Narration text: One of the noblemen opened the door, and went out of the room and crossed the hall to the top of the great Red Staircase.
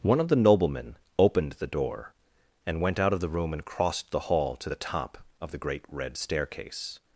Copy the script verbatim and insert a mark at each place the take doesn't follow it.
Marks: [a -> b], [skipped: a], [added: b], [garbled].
One of the noblemen opened the door, and went out of the room and crossed the hall to the top of the great Red Staircase.